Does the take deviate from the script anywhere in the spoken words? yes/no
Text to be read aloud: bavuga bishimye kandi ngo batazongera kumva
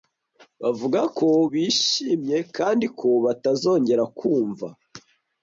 yes